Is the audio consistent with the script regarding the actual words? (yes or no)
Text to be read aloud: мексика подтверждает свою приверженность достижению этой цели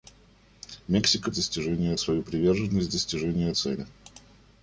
no